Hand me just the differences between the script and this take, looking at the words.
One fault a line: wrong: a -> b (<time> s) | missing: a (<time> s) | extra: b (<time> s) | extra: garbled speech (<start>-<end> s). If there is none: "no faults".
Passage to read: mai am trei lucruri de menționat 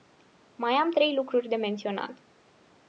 no faults